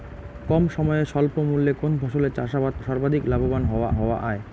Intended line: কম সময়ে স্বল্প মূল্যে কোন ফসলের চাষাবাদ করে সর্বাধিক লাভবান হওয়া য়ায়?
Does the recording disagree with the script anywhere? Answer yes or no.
yes